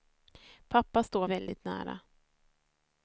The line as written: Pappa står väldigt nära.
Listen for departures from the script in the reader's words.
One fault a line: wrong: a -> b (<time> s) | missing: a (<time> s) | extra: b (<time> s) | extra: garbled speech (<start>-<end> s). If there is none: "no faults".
no faults